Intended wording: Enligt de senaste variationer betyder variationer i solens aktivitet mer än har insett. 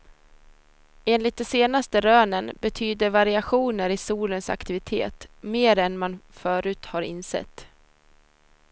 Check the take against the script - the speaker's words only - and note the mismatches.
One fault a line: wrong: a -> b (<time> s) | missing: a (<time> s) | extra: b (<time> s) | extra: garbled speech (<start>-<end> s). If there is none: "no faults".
wrong: variationer -> rönen (2.0 s)
extra: man förut (6.0 s)